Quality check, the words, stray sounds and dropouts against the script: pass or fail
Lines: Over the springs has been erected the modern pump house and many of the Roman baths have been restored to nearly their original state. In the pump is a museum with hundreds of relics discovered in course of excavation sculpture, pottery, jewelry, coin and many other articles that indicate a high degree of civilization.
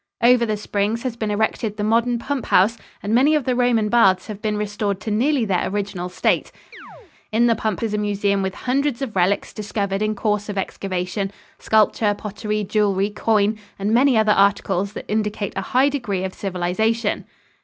fail